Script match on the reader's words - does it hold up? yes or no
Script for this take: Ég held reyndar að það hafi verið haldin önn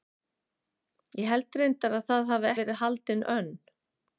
yes